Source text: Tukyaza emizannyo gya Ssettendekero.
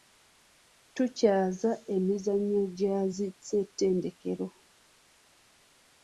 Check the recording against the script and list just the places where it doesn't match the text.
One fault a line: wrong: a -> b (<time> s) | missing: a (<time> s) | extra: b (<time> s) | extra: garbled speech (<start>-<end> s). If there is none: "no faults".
extra: zi (3.1 s)